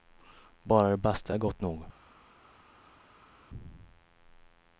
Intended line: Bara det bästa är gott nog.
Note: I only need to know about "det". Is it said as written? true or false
true